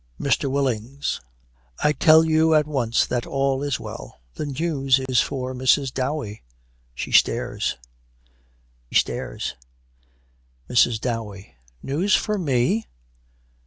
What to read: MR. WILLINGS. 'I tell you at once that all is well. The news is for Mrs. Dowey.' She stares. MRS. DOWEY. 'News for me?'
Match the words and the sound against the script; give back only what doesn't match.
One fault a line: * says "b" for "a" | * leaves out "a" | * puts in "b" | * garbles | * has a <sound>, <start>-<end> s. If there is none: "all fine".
* has a dropout, 5.1-5.1 s
* puts in "stares"